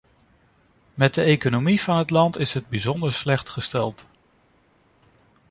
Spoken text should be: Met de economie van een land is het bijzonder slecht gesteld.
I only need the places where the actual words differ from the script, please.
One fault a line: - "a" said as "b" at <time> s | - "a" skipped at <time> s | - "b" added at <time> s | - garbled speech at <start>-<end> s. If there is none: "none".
- "een" said as "het" at 2.0 s